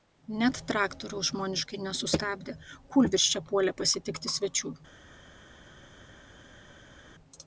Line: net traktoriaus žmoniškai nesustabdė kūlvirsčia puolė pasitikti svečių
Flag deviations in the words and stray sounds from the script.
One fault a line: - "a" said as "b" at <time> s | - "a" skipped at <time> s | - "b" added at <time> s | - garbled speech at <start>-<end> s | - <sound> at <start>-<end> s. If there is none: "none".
none